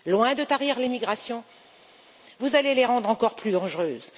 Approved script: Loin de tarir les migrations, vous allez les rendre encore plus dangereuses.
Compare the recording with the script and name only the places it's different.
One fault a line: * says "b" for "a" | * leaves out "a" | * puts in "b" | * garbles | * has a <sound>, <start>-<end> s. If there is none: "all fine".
all fine